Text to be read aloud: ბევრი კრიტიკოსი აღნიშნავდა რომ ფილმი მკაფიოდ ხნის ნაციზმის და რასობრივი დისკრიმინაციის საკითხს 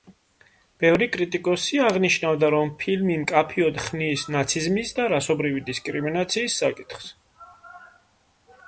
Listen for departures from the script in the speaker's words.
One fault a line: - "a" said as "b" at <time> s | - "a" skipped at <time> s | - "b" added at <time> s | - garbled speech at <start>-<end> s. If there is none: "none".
none